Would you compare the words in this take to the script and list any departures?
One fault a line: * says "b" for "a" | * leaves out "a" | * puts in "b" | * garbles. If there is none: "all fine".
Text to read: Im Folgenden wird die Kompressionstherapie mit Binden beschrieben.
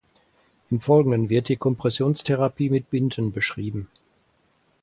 all fine